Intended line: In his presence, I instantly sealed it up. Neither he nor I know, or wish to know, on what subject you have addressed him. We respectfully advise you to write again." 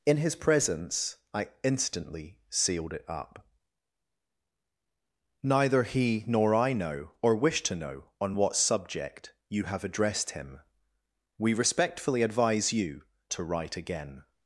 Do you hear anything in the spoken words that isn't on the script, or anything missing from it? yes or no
no